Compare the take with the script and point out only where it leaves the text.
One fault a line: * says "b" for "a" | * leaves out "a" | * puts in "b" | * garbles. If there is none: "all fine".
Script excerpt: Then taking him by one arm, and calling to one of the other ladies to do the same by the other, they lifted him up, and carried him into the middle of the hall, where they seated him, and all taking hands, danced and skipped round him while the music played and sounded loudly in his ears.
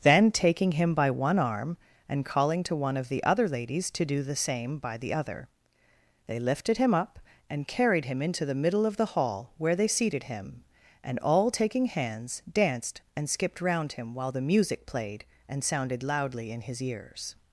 all fine